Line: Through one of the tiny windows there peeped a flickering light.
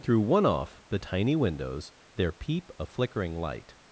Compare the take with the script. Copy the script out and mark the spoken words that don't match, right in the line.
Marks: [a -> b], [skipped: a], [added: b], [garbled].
Through one [of -> off] the tiny windows there [peeped -> peep] a flickering light.